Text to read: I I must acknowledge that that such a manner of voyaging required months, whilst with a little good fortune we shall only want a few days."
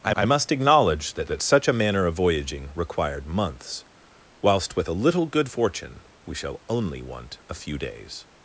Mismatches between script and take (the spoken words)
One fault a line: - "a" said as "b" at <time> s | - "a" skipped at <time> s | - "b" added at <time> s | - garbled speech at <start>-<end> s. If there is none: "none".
none